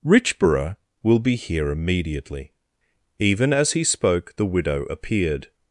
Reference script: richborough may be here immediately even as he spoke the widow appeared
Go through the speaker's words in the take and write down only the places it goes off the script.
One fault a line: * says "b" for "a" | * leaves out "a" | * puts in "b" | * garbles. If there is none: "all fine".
* says "will" for "may"